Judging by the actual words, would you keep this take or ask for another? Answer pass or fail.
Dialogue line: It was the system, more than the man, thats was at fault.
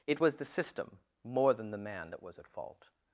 fail